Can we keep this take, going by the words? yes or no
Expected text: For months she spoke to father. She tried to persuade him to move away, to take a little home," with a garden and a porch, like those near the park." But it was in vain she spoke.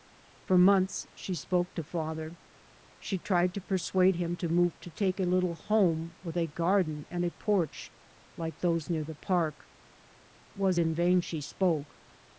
no